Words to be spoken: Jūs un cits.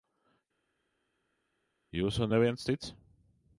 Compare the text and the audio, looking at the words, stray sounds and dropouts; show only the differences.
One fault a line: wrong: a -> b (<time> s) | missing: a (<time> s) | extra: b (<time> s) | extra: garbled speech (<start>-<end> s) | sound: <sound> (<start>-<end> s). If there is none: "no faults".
extra: neviens (2.3 s)